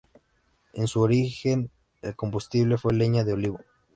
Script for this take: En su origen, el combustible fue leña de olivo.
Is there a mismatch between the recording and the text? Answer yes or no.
no